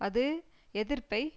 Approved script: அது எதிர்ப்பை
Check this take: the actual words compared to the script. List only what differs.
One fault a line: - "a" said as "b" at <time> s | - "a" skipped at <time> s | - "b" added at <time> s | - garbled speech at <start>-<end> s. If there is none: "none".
none